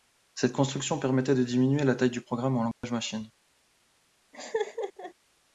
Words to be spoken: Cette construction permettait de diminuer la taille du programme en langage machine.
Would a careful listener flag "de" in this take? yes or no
no